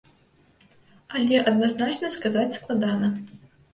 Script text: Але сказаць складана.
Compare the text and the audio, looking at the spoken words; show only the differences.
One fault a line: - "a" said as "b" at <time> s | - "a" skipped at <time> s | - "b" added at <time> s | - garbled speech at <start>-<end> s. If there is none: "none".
- "адназначна" added at 1.5 s